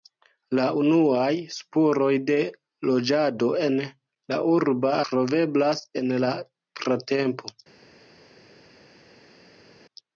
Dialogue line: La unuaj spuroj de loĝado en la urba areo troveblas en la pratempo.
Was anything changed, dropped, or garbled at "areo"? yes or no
yes